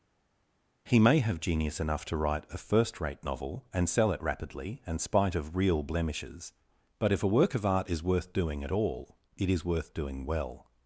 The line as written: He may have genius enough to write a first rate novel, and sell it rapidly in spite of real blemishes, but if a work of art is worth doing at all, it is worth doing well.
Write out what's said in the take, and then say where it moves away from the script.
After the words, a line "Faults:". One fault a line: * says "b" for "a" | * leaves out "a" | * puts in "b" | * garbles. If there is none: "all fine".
He may have genius enough to write a first rate novel, and sell it rapidly and spite of real blemishes, but if a work of art is worth doing at all, it is worth doing well.
Faults:
* says "and" for "in"